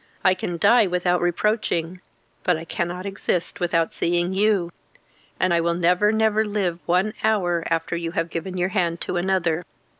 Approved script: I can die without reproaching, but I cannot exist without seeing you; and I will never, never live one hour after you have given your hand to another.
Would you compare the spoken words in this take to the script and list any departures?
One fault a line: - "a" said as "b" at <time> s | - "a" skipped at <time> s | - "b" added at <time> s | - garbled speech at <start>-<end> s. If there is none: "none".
none